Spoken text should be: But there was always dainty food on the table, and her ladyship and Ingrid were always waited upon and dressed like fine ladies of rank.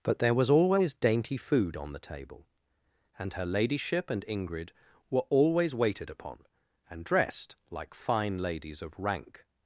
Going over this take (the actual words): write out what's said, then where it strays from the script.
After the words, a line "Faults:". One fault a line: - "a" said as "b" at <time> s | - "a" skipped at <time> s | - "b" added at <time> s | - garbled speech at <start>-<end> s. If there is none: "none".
But there was always dainty food on the table, and her ladyship and Ingrid were always waited upon and dressed like fine ladies of rank.
Faults:
none